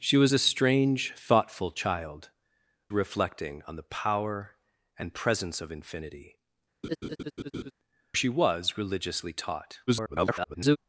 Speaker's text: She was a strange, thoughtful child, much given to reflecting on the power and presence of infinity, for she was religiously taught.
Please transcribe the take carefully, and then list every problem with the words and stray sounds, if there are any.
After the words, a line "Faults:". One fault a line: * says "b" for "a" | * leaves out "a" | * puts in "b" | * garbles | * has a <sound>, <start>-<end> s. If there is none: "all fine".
She was a strange, thoughtful child, reflecting on the power and presence of infinity, she was religiously taught. [garbled]
Faults:
* leaves out "much given to"
* leaves out "for"
* has a laugh, 6.8-7.7 s
* garbles